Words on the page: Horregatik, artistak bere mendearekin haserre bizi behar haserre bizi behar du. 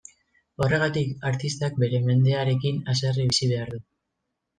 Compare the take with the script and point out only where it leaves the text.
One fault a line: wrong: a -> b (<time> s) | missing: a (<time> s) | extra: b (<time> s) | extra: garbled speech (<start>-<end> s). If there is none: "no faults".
missing: haserre bizi behar (3.7 s)